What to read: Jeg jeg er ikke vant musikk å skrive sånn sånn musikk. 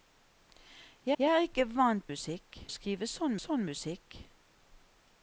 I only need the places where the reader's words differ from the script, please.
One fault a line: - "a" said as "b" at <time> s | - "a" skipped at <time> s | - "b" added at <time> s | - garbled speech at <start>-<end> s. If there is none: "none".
none